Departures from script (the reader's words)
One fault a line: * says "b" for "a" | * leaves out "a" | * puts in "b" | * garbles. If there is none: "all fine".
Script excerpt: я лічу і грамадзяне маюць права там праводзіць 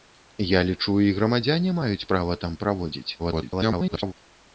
* garbles